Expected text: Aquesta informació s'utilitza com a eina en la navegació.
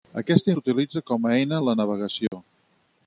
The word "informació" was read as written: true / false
false